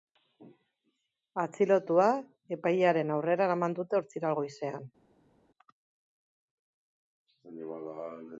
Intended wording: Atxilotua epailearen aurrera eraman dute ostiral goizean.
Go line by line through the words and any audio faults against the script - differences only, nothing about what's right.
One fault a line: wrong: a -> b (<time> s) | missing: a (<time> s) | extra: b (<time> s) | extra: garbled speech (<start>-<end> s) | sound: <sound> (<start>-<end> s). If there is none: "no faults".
no faults